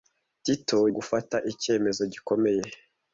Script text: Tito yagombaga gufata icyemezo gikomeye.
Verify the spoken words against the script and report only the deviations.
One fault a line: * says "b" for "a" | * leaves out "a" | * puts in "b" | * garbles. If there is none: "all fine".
* leaves out "yagombaga"